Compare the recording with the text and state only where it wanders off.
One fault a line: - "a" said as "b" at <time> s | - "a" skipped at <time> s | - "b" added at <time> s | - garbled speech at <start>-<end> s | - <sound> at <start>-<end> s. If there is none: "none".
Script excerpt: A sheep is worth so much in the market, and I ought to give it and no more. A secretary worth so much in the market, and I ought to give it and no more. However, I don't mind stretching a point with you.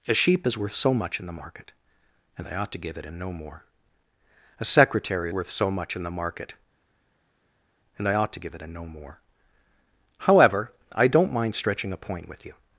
none